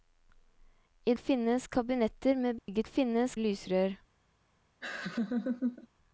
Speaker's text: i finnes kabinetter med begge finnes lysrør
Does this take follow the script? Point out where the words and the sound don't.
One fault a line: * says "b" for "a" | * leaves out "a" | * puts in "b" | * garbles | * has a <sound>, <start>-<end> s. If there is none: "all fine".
* has a dropout, 2.6-2.7 s
* has a laugh, 4.8-5.9 s